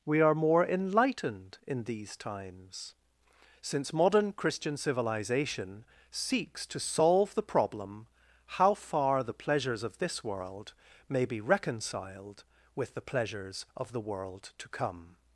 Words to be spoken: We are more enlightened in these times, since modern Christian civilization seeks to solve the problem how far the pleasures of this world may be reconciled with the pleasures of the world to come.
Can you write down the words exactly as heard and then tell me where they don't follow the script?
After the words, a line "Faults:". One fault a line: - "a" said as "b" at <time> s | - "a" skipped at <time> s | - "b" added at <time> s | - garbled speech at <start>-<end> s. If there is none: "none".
We are more enlightened in these times, since modern Christian civilization seeks to solve the problem how far the pleasures of this world may be reconciled with the pleasures of the world to come.
Faults:
none